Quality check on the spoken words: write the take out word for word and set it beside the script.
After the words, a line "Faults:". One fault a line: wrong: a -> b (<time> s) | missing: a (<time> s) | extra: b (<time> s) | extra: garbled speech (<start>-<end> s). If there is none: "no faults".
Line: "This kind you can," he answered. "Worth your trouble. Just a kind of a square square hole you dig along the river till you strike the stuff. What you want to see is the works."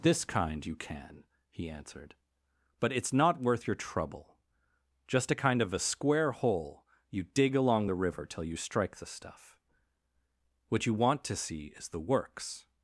"This kind you can," he answered. "But it's not worth your trouble. Just a kind of a square hole you dig along the river till you strike the stuff. What you want to see is the works."
Faults:
extra: But it's not (2.8 s)
missing: square (6.3 s)